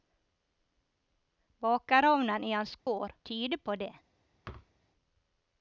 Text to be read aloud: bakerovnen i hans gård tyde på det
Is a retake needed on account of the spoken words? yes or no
no